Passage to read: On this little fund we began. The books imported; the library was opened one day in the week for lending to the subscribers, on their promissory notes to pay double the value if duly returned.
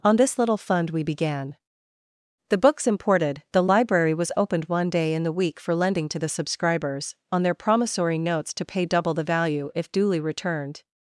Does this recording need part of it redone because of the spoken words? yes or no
no